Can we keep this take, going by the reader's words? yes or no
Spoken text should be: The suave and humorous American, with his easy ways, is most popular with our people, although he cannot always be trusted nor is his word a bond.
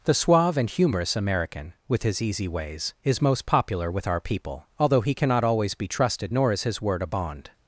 yes